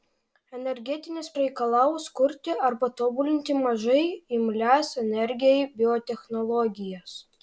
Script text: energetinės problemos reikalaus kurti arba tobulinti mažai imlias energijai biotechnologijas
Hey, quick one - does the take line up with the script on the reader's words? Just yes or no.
no